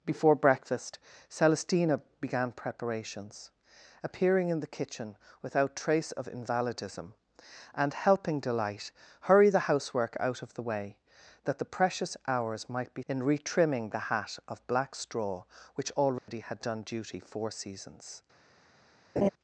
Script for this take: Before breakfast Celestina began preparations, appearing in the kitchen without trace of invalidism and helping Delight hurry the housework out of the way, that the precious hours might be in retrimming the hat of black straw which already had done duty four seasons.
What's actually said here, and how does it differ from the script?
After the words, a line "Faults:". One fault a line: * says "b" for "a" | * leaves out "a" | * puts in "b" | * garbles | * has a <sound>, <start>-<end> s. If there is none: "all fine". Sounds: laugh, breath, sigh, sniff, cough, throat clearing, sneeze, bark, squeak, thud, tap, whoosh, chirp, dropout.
Before breakfast Celestina began preparations, appearing in the kitchen without trace of invalidism and helping Delight hurry the housework out of the way, that the precious hours might be in retrimming the hat of black straw which already had done duty four seasons.
Faults:
* has a dropout, 16.2-16.3 s
* has a laugh, 19.2-19.3 s